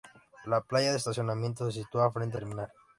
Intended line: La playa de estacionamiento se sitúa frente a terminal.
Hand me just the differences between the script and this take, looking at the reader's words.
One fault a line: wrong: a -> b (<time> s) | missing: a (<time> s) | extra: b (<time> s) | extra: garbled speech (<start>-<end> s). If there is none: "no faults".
no faults